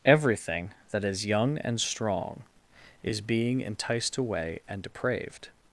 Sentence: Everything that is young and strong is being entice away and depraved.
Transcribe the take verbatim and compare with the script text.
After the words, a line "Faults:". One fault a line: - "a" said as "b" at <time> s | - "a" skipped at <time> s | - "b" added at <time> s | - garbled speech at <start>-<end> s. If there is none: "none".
Everything that is young and strong is being enticed away and depraved.
Faults:
- "entice" said as "enticed" at 3.6 s